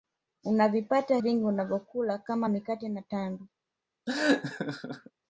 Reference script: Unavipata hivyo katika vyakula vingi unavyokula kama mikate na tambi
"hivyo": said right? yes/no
no